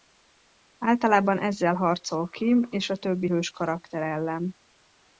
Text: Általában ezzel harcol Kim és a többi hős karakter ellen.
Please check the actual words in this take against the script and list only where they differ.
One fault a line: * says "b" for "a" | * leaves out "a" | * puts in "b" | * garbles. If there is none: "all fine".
all fine